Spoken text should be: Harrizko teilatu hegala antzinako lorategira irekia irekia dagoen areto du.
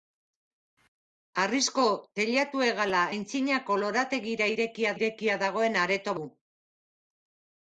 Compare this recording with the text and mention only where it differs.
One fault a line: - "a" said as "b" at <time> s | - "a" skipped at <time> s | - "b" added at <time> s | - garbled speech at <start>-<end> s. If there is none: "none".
none